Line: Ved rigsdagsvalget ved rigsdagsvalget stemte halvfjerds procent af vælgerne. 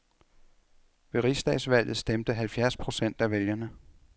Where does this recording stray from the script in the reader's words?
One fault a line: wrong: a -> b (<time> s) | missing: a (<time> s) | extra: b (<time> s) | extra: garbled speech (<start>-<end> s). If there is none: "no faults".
missing: ved rigsdagsvalget (2.0 s)